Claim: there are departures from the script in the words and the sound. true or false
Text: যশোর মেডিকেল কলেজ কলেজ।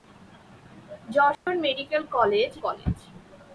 true